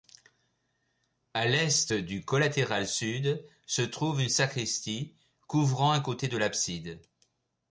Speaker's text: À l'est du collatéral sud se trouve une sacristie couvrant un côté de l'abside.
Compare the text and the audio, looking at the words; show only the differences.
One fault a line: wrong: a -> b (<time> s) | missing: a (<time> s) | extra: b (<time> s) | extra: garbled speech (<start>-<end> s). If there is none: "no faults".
no faults